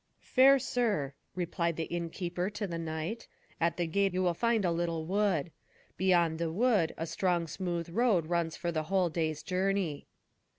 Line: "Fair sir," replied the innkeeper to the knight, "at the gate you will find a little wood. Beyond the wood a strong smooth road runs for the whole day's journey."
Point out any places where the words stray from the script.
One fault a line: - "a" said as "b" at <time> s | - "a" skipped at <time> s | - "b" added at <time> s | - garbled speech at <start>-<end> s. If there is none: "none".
none